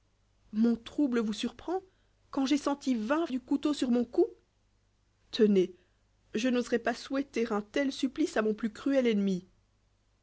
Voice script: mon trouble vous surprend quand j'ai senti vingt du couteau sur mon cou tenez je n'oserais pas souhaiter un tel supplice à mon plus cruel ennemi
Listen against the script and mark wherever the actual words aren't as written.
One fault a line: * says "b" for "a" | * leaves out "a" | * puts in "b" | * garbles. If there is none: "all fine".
all fine